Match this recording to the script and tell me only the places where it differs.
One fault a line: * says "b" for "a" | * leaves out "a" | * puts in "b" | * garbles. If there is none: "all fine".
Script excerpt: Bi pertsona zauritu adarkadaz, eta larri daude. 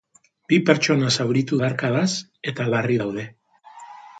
all fine